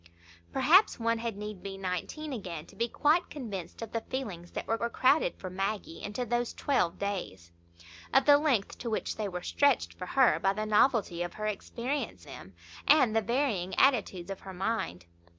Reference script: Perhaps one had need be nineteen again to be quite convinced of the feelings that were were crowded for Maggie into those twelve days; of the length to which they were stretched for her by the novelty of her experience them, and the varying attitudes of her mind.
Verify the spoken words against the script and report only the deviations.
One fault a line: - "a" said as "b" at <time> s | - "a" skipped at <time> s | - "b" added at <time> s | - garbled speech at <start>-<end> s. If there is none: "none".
none